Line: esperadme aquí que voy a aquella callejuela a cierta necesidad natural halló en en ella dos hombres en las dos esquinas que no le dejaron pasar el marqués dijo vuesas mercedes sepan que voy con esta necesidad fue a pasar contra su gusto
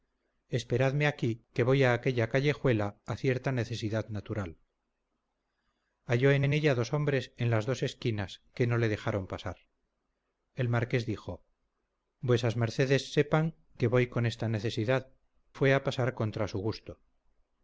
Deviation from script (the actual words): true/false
false